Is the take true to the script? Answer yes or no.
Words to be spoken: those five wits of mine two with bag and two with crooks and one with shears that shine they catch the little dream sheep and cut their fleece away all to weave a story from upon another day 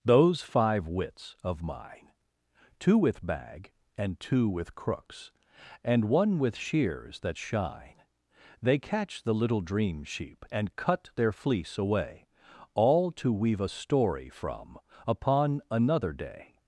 yes